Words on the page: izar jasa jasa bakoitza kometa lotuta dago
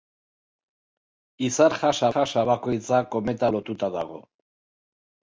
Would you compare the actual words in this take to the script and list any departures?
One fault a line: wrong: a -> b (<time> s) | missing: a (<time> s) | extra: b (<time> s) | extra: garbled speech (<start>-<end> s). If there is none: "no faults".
no faults